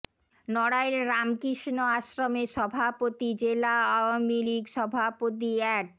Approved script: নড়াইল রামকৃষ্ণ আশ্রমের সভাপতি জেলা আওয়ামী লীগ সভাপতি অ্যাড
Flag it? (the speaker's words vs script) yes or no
no